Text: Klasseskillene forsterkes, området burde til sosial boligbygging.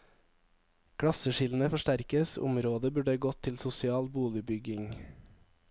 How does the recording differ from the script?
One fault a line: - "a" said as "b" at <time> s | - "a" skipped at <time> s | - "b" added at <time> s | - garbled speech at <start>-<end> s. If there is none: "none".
- "gått" added at 3.2 s